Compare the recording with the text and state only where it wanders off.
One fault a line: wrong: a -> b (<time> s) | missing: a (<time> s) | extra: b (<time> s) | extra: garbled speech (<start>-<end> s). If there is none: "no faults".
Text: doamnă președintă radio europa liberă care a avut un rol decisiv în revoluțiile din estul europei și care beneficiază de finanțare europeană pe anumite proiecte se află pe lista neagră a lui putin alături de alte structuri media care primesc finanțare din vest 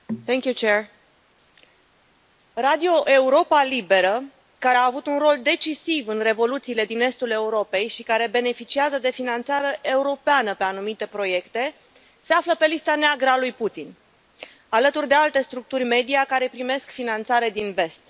no faults